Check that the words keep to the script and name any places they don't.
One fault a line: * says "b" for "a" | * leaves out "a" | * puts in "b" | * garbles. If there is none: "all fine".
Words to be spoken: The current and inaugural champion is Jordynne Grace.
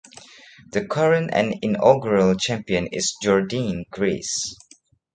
all fine